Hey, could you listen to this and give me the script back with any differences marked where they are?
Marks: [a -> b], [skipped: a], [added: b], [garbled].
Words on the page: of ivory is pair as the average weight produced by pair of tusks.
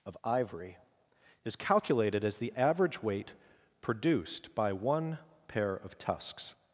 of ivory is [pair -> calculated] as the average weight produced by [added: one] pair of tusks.